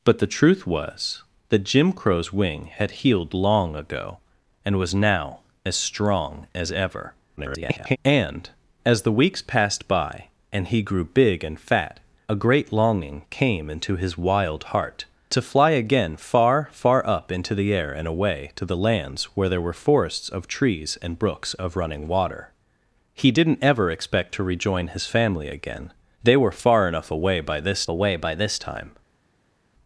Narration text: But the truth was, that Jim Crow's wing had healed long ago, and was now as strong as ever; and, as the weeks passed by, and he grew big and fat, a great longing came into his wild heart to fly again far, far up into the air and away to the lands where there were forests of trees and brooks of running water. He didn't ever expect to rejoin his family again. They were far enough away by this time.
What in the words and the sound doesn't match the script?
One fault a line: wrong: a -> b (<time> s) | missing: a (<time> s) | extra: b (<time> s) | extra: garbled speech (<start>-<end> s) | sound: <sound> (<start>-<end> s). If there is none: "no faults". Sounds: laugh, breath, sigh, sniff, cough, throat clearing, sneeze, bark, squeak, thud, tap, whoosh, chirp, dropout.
extra: garbled speech (7.4-8.0 s)
extra: away by this (27.9 s)